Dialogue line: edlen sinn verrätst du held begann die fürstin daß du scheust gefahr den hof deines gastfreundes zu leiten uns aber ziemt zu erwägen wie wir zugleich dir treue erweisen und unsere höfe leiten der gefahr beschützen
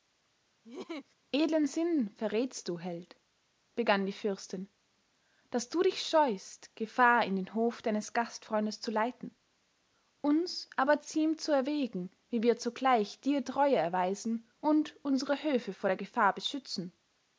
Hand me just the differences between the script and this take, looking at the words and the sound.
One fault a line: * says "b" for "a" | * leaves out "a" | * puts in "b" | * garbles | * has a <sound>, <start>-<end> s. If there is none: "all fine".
* has a laugh, 0.6-1.1 s
* puts in "dich"
* puts in "in"
* says "vor" for "leiten"